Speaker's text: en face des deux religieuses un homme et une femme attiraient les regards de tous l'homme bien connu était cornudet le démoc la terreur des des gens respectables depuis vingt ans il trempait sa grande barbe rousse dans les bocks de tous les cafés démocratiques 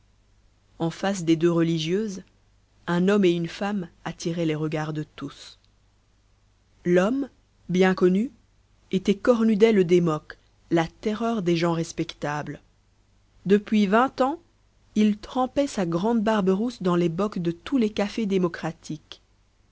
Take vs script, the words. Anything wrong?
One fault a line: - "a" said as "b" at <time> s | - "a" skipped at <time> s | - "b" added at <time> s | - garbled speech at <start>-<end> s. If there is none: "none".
- "des" skipped at 11.6 s